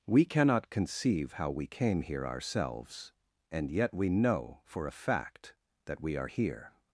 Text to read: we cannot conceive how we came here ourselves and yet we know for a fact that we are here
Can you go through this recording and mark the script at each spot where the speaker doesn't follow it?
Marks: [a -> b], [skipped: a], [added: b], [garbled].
we cannot conceive how we came here ourselves and yet we know for a fact that we are here